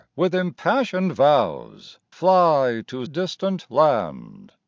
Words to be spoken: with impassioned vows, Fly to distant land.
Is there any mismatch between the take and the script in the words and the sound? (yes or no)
no